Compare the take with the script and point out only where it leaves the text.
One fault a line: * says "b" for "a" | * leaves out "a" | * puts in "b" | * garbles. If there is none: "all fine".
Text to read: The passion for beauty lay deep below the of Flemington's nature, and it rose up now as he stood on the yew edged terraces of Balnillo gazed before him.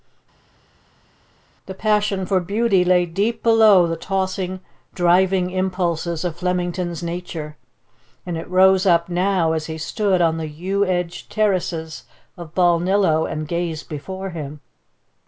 * puts in "tossing driving impulses"
* puts in "and"